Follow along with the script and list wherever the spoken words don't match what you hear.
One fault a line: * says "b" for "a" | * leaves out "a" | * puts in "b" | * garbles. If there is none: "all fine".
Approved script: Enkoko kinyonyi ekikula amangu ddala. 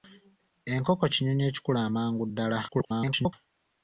* garbles